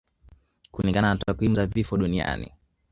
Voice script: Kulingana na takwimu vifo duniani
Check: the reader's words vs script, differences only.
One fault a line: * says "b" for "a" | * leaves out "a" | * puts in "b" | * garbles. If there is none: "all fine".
* puts in "za"